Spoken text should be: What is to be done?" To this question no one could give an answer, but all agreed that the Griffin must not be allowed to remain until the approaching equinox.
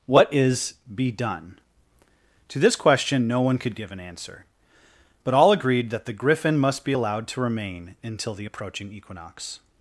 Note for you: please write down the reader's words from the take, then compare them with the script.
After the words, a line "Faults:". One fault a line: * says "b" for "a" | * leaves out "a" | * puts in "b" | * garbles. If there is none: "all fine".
What is be done?" To this question no one could give an answer, but all agreed that the Griffin must be allowed to remain until the approaching equinox.
Faults:
* leaves out "to"
* leaves out "not"